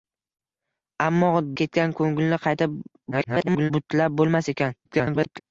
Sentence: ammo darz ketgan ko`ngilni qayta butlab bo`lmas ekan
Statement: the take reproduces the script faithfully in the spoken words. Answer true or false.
false